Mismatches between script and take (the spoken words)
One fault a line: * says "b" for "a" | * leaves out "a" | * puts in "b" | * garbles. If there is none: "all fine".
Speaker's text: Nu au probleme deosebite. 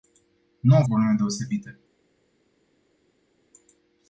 all fine